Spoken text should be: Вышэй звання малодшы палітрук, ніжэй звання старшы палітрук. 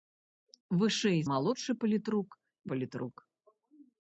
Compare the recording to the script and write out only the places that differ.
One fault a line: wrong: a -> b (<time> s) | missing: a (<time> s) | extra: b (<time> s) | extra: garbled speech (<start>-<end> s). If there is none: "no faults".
missing: звання (1.2 s)
missing: ніжэй звання старшы (2.3 s)